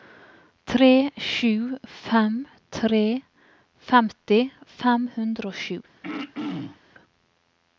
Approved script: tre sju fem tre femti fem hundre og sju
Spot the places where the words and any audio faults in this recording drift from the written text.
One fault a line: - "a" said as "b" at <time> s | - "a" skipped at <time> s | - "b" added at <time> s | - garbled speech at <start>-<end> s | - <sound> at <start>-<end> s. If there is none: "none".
- throat clearing at 6.0-6.8 s